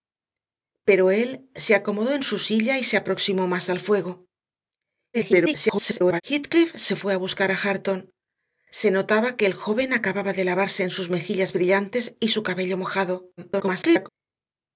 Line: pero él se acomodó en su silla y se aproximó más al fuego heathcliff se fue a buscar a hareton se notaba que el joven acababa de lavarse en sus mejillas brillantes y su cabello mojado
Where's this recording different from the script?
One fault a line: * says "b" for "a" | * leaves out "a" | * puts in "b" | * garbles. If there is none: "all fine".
* garbles
* garbles